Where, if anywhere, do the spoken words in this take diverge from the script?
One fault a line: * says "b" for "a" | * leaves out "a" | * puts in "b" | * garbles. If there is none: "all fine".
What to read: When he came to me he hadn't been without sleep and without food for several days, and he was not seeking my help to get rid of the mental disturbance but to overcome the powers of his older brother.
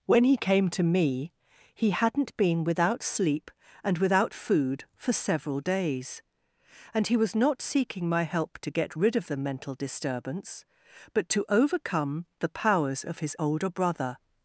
all fine